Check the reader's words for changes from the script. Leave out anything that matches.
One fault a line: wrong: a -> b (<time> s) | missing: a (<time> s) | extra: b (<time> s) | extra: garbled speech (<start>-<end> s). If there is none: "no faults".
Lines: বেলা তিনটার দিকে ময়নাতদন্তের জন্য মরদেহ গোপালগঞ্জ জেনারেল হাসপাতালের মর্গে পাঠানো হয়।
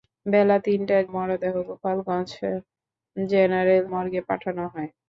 missing: দিকে ময়নাতদন্তের জন্য (1.0 s)
missing: হাসপাতালের (3.8 s)